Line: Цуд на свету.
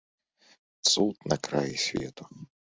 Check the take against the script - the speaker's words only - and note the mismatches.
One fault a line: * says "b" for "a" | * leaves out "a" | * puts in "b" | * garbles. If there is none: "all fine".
* puts in "краі"